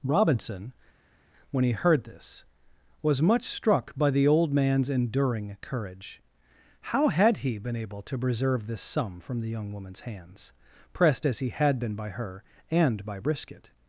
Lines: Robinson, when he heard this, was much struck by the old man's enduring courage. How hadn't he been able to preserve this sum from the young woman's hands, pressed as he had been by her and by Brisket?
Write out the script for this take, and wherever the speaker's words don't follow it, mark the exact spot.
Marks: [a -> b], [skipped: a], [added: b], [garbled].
Robinson, when he heard this, was much struck by the old man's enduring courage. How [hadn't -> had] he been able to preserve this sum from the young woman's hands, pressed as he had been by her and by Brisket?